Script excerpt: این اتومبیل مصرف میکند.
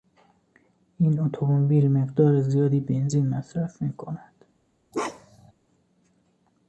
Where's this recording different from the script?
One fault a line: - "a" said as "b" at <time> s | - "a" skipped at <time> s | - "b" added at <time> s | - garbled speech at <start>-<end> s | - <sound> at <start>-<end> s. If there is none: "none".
- "مقدار زیادی بنزین" added at 1.9 s
- bark at 4.9-5.5 s